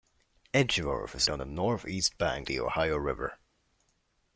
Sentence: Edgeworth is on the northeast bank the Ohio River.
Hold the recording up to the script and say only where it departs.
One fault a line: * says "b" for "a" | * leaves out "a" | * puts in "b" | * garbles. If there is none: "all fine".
all fine